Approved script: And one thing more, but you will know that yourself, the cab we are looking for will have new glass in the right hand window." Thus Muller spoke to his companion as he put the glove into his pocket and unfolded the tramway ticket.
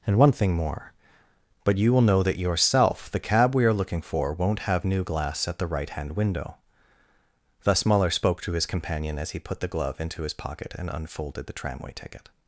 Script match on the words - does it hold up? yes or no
no